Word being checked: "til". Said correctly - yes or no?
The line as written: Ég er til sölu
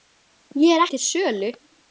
yes